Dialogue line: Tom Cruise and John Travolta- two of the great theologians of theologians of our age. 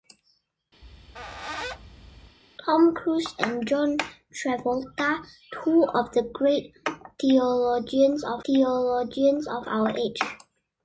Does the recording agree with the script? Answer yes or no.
yes